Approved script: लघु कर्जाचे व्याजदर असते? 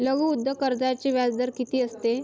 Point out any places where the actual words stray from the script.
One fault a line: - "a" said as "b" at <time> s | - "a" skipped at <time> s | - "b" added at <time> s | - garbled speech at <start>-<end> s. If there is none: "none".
- "उद्योग" added at 0.3 s
- "किती" added at 1.6 s